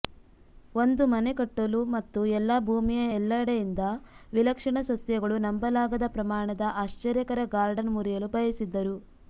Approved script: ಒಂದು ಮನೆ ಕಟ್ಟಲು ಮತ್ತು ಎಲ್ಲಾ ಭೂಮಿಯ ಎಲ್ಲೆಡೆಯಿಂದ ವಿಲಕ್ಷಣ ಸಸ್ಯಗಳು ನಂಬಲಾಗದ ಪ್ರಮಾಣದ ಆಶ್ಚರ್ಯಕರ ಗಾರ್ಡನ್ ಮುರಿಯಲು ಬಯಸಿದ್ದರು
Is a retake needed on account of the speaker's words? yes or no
no